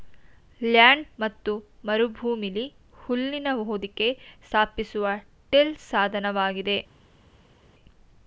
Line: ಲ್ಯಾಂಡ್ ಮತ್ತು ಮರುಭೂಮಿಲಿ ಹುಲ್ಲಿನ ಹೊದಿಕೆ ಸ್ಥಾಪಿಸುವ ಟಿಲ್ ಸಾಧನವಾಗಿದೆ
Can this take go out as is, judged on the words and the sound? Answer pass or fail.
pass